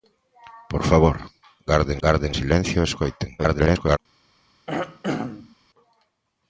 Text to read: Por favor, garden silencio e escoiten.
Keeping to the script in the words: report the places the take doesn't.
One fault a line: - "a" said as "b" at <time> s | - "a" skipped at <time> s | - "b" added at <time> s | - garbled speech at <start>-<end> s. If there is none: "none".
- "garden" added at 2.0 s
- garbled speech at 3.4-4.0 s